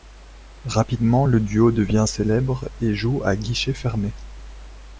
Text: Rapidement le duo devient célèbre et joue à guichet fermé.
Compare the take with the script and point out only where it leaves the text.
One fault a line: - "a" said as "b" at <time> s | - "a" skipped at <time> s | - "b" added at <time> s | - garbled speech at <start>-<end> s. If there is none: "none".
none